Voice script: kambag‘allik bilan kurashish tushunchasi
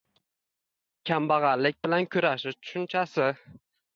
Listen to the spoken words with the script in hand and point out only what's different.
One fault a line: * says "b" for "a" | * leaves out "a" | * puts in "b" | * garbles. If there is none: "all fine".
all fine